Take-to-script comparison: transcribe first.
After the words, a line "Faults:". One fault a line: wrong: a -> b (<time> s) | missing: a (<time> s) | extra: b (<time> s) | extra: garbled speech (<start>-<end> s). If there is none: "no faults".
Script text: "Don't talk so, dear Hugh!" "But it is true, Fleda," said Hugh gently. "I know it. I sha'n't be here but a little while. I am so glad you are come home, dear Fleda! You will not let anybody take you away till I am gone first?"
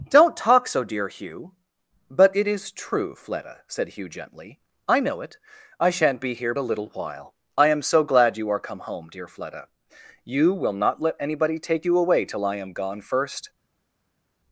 "Don't talk so, dear Hugh!" "But it is true, Fleda," said Hugh gently. "I know it. I sha'n't be here a little while. I am so glad you are come home, dear Fleda! You will not let anybody take you away till I am gone first?"
Faults:
missing: but (6.5 s)